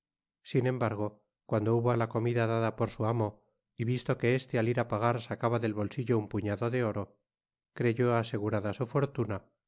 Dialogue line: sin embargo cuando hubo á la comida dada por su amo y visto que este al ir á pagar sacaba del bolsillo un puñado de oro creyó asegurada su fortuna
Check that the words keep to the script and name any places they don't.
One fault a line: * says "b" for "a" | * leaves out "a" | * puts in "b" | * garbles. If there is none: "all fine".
all fine